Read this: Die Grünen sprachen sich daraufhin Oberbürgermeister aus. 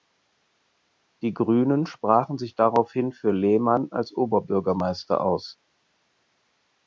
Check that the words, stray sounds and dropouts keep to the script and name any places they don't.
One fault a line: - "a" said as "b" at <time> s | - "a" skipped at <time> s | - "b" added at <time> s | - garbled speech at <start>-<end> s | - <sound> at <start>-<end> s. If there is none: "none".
- "für Lehmann als" added at 3.1 s